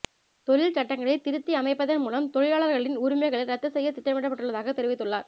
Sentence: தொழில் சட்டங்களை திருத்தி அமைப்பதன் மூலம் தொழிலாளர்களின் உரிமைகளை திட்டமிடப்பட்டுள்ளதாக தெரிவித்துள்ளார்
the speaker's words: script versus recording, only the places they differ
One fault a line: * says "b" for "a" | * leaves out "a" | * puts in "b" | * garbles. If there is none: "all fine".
* puts in "ரத்து செய்ய"